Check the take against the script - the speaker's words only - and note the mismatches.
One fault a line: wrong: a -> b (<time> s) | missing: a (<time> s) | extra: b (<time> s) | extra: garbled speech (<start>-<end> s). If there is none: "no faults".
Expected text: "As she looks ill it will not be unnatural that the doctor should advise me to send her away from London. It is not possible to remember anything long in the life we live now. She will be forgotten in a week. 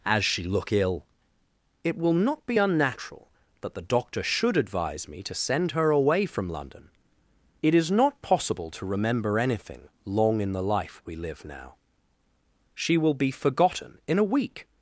wrong: looks -> look (0.4 s)